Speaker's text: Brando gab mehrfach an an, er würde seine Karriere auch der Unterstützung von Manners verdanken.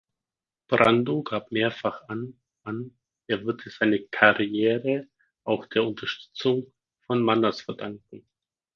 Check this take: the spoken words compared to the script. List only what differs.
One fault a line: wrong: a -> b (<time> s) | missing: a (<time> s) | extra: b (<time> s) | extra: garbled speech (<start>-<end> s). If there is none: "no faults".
no faults